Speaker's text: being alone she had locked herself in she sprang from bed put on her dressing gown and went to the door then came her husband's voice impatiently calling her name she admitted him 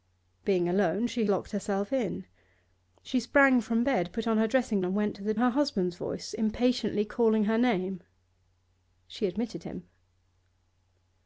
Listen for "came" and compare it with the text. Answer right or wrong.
wrong